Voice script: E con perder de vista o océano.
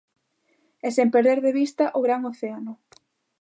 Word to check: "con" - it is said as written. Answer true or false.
false